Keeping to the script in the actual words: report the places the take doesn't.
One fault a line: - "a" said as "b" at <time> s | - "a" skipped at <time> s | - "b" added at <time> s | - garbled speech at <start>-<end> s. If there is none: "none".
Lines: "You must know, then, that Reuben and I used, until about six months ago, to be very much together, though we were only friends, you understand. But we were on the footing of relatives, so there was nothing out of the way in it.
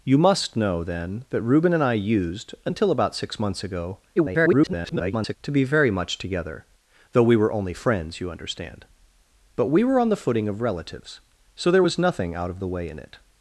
- garbled speech at 4.2-5.4 s